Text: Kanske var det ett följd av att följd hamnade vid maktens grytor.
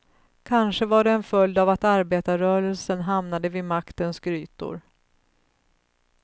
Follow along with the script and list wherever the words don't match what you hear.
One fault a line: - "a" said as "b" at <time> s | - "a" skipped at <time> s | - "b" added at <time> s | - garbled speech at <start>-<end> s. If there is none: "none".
- "ett" said as "en" at 1.1 s
- "följd" said as "arbetarrörelsen" at 1.8 s